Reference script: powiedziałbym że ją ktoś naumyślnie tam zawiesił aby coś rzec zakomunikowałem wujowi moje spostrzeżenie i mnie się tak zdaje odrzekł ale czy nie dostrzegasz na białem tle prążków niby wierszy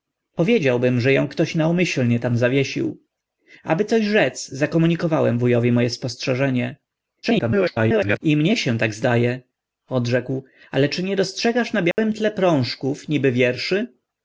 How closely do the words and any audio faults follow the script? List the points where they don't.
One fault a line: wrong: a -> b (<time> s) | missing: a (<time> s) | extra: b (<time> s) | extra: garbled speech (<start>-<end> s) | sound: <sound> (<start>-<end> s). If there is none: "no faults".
extra: garbled speech (7.2-8.2 s)
sound: dropout (11.9-12.0 s)